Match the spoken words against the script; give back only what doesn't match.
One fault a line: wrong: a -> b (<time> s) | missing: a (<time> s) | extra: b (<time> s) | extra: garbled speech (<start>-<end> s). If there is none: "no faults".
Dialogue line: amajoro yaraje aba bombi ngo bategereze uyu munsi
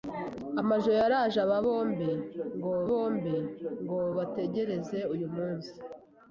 extra: bombi ngo (2.9 s)